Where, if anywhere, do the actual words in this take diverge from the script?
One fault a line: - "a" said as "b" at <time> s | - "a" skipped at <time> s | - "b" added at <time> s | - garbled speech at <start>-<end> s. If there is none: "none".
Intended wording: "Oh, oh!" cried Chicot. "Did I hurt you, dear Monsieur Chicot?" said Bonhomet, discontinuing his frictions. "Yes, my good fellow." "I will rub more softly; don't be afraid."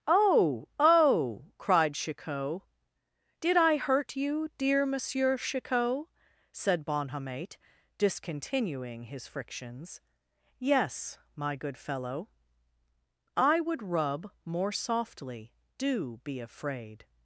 - "will" said as "would" at 13.6 s
- "don't" said as "do" at 15.8 s